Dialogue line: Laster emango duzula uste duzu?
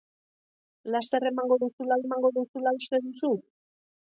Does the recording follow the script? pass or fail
fail